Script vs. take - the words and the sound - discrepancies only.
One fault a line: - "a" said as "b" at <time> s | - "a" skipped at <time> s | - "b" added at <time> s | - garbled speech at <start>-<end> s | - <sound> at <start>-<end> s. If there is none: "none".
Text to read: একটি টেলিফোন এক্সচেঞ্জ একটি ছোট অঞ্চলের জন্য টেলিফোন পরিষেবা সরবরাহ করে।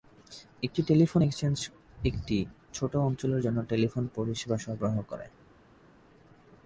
none